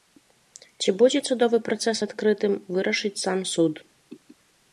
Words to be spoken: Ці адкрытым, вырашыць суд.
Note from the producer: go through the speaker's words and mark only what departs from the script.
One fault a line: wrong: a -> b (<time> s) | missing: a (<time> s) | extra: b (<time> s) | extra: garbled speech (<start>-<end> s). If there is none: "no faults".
extra: будзе судовы працэс (1.0 s)
extra: сам (3.2 s)